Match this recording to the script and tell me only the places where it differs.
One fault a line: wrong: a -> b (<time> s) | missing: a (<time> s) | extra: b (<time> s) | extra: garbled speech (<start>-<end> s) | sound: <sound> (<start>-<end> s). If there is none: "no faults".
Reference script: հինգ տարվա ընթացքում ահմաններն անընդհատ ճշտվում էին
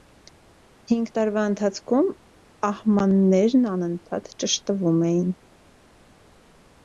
no faults